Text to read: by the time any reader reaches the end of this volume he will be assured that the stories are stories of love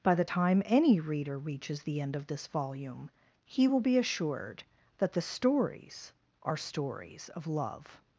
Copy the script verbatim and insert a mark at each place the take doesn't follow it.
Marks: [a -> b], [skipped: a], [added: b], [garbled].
by the time any reader reaches the end of this volume he will be assured that the stories are stories of love